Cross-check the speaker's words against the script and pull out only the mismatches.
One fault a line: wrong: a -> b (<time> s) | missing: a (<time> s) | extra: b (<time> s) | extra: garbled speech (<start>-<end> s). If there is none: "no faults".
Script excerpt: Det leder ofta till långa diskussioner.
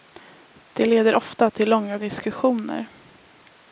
no faults